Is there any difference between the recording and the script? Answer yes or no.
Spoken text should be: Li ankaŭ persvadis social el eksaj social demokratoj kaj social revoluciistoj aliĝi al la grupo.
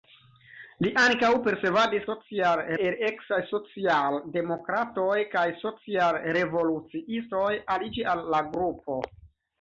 no